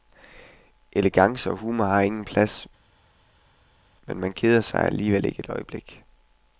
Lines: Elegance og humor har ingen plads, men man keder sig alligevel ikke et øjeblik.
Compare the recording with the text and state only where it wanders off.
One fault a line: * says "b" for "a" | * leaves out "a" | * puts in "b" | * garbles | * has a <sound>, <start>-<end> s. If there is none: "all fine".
all fine